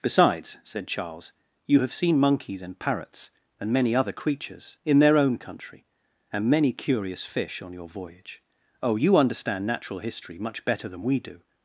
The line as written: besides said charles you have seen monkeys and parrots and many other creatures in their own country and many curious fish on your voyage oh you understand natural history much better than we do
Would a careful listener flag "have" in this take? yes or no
no